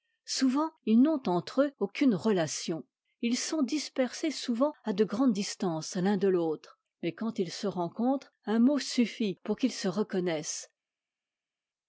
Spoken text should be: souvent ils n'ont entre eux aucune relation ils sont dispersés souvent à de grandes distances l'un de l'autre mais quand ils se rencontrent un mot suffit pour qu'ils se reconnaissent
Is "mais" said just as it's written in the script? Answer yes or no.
yes